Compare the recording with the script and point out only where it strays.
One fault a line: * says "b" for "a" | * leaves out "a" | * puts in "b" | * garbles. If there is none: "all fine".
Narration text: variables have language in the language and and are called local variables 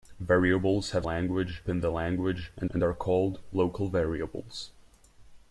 all fine